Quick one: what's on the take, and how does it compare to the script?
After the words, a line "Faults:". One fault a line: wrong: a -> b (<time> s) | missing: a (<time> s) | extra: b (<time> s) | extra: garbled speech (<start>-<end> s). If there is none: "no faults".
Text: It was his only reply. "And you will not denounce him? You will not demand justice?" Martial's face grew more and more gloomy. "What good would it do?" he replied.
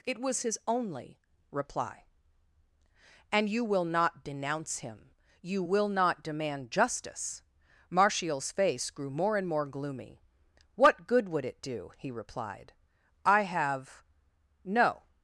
It was his only reply. "And you will not denounce him? You will not demand justice?" Martial's face grew more and more gloomy. "What good would it do?" he replied. "I have no
Faults:
extra: I have no (13.3 s)